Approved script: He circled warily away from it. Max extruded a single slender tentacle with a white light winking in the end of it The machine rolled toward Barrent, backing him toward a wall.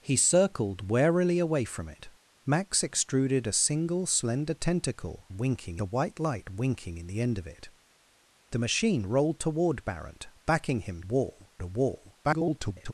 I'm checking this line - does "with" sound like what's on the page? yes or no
no